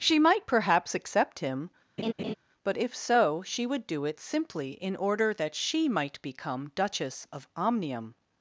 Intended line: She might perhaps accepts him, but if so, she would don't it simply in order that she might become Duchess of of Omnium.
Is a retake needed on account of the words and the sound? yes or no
yes